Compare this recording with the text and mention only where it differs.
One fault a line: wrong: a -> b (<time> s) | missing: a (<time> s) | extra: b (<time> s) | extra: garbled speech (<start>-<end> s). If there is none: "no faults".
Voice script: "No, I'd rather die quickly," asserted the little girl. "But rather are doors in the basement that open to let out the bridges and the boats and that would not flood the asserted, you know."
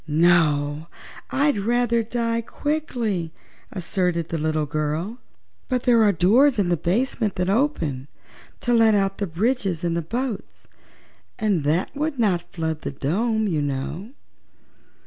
wrong: rather -> there (5.8 s)
wrong: asserted -> dome (12.9 s)